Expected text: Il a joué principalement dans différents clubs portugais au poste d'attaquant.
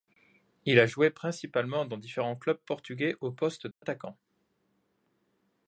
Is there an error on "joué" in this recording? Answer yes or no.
no